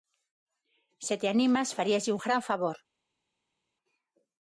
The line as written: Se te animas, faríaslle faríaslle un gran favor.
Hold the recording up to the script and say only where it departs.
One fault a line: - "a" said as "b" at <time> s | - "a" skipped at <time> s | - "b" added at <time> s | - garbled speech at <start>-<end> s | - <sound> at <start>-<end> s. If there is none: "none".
- "faríaslle" skipped at 2.1 s